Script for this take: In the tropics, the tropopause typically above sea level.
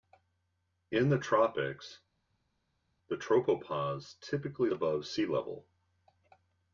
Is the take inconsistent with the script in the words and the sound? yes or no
no